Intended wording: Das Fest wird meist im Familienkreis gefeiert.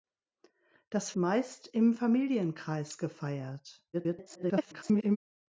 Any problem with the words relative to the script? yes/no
yes